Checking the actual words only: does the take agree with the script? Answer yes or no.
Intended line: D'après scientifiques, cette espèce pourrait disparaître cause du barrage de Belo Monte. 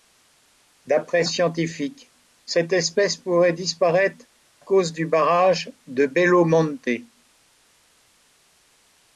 yes